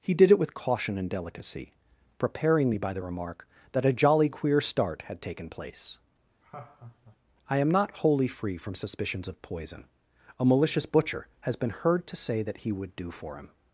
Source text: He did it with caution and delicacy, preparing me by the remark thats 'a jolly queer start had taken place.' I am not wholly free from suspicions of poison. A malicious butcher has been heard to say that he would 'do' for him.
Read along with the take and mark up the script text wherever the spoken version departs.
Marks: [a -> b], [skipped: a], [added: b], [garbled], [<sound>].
He did it with caution and delicacy, preparing me by the remark [thats -> that] 'a jolly queer start had taken place.' [laugh] I am not wholly free from suspicions of poison. A malicious butcher has been heard to say that he would 'do' for him.